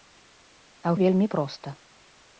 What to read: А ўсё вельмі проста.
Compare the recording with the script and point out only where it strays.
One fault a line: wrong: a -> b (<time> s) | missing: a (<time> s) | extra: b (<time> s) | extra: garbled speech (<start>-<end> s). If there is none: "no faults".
missing: ўсё (0.9 s)